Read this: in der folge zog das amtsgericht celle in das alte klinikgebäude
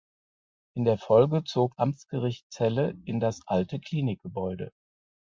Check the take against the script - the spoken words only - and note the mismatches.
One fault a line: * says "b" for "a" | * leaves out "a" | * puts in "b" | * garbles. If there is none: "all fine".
* leaves out "das"